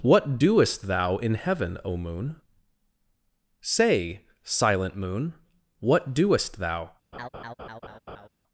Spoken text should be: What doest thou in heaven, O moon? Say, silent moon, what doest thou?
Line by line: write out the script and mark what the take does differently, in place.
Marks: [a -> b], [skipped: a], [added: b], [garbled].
What doest thou in heaven, O moon? Say, silent moon, what doest thou?